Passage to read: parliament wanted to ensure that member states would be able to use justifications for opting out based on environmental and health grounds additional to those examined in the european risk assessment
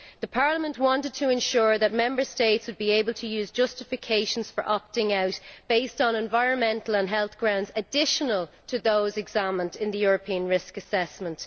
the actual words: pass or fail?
pass